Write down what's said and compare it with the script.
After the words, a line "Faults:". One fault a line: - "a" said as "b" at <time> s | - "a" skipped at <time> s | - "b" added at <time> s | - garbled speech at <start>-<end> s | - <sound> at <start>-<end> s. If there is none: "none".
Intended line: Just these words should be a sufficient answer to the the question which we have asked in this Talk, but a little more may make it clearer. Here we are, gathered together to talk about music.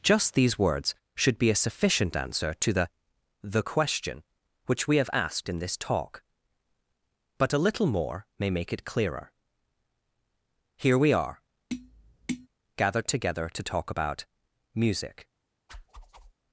Just these words should be a sufficient answer to the the question which we have asked in this Talk, but a little more may make it clearer. Here we are, gathered together to talk about music.
Faults:
- tap at 11.7-12.5 s
- whoosh at 15.7-16.3 s